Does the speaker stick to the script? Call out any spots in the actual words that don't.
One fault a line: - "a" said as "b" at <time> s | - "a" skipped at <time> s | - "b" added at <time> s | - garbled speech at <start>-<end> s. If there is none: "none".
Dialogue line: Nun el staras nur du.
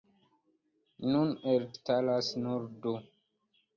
none